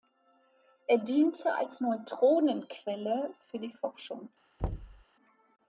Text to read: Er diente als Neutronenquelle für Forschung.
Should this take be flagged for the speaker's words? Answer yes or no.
yes